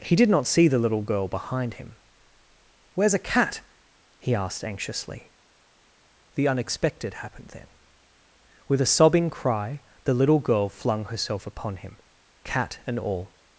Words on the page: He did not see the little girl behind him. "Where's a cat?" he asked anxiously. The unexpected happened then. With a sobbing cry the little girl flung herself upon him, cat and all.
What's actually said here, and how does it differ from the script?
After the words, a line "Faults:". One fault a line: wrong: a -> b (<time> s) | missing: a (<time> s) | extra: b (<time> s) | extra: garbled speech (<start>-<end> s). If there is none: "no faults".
He did not see the little girl behind him. "Where's a cat?" he asked anxiously. The unexpected happened then. With a sobbing cry the little girl flung herself upon him, cat and all.
Faults:
no faults